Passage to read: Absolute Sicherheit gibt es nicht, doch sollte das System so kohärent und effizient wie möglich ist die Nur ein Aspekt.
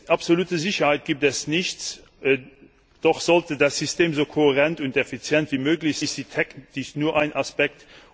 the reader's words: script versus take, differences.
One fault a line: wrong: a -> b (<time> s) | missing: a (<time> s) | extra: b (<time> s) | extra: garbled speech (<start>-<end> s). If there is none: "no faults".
no faults